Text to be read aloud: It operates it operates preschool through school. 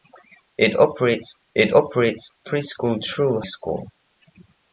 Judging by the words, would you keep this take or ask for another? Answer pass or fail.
pass